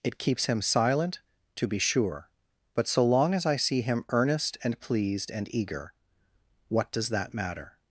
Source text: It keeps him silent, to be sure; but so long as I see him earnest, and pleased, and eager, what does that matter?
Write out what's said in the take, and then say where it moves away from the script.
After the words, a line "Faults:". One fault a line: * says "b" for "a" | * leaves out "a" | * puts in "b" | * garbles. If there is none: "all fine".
It keeps him silent, to be sure; but so long as I see him earnest, and pleased, and eager, what does that matter?
Faults:
all fine